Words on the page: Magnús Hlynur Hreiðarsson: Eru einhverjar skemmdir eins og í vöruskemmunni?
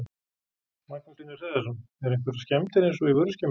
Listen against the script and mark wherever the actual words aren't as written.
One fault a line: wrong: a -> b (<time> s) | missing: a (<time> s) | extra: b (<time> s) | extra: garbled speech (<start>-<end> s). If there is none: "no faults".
no faults